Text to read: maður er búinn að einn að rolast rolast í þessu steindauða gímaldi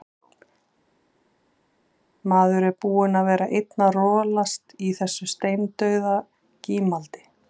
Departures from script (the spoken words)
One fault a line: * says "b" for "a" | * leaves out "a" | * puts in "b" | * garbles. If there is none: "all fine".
* puts in "vera"
* leaves out "rolast"